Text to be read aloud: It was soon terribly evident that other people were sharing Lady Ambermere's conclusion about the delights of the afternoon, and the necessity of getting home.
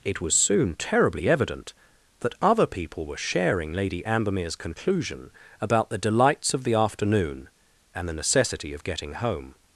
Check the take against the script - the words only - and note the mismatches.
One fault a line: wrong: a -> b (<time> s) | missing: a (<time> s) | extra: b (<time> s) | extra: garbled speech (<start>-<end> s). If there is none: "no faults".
no faults